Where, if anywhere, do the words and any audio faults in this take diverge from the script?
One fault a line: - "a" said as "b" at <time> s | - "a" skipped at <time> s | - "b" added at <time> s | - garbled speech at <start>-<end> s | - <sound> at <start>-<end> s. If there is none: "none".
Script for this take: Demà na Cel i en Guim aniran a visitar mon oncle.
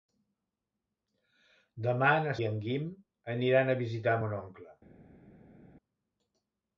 - "Cel" skipped at 2.3 s